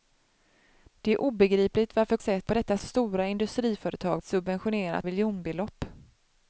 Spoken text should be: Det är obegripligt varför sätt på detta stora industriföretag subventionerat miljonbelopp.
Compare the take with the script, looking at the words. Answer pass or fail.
pass